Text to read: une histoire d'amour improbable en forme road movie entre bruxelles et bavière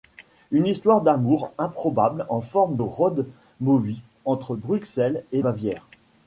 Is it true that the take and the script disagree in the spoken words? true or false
false